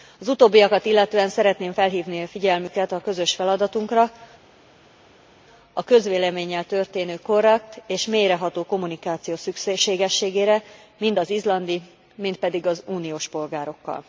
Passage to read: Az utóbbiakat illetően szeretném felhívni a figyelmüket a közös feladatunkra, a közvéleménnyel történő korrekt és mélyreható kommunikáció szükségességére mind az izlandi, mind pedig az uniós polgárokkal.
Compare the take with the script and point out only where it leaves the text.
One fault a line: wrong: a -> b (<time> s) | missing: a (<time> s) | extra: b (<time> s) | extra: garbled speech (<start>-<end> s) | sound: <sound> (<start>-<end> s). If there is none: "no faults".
no faults